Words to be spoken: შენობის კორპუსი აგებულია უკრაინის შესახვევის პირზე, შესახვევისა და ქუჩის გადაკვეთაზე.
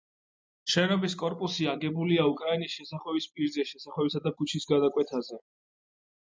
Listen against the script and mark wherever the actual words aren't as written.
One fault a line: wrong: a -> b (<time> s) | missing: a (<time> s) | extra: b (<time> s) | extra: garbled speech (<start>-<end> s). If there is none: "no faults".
no faults